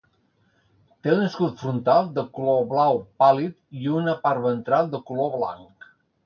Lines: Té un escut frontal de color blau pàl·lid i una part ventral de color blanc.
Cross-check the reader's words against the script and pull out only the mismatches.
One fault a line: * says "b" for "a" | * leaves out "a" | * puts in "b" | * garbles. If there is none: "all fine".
all fine